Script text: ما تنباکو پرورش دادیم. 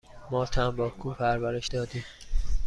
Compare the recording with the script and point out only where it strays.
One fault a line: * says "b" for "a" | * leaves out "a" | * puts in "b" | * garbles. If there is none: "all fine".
all fine